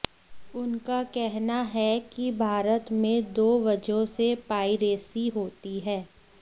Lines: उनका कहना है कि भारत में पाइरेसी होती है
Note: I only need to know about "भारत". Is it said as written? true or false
true